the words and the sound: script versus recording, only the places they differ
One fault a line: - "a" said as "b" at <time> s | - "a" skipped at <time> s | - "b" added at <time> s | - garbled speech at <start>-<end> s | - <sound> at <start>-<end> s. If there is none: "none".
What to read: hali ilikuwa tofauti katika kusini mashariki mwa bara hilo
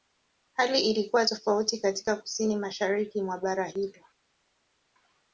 none